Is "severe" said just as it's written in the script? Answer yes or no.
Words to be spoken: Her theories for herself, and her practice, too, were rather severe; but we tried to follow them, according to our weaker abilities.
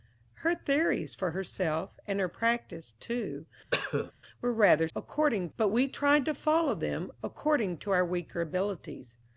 no